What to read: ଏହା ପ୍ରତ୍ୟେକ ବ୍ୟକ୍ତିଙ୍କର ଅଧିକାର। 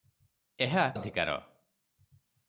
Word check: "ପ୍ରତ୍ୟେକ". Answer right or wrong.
wrong